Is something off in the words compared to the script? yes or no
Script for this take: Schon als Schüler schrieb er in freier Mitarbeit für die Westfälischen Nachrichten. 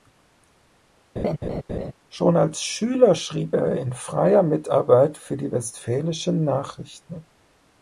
no